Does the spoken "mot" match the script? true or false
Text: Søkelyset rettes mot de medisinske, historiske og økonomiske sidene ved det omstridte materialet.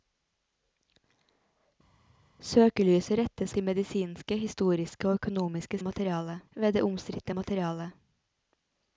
false